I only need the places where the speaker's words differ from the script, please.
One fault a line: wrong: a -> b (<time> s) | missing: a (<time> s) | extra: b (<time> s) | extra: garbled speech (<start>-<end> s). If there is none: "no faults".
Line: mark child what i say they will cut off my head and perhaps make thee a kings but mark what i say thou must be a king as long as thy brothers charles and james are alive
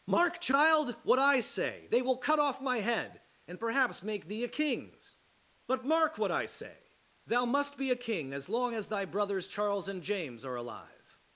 no faults